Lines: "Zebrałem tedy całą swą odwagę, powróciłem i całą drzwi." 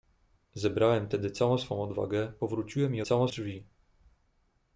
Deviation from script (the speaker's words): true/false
false